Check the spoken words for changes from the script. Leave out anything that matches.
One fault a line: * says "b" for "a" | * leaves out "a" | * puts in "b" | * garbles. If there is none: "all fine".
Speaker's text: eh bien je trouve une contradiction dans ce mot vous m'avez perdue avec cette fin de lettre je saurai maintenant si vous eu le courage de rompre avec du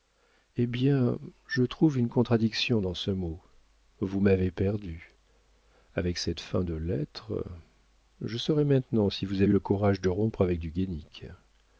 all fine